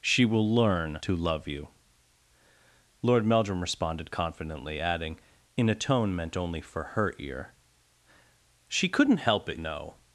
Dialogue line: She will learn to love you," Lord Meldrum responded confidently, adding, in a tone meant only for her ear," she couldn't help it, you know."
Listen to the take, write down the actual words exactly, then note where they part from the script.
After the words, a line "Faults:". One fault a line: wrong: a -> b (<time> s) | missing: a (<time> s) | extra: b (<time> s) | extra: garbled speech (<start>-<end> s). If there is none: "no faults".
She will learn to love you," Lord Meldrum responded confidently, adding, in a tone meant only for her ear," she couldn't help it, know."
Faults:
missing: you (9.6 s)